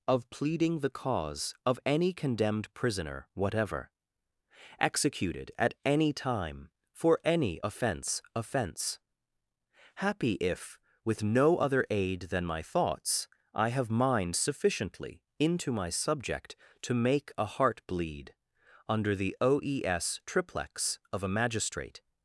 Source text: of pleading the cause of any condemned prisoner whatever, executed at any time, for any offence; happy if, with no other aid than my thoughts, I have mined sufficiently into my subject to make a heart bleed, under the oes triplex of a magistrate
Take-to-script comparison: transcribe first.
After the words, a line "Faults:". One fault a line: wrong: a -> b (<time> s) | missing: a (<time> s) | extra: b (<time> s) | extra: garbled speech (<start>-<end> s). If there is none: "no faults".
of pleading the cause of any condemned prisoner whatever, executed at any time, for any offence offence; happy if, with no other aid than my thoughts, I have mined sufficiently into my subject to make a heart bleed, under the oes triplex of a magistrate
Faults:
extra: offence (8.3 s)